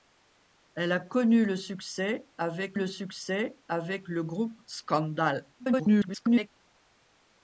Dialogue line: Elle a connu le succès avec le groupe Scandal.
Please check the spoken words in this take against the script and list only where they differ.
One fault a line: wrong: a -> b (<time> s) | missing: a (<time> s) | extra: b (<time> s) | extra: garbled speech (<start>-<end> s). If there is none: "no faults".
extra: succès avec le (2.9 s)
extra: garbled speech (5.6-6.5 s)